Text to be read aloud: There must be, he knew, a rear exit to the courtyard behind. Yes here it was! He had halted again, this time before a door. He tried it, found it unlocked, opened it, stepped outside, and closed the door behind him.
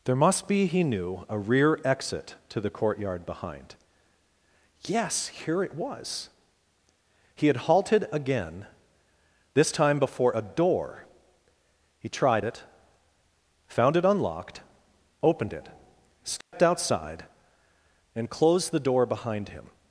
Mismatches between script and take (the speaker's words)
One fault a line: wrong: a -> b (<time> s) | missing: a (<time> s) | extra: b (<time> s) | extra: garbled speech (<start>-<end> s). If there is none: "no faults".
no faults